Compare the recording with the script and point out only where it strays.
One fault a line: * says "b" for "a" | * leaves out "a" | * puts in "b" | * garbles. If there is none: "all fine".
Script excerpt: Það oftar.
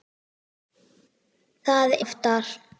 all fine